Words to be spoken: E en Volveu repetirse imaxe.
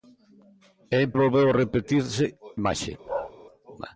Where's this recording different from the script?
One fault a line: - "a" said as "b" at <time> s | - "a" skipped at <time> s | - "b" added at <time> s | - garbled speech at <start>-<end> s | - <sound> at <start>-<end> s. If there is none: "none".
- bark at 3.1-3.3 s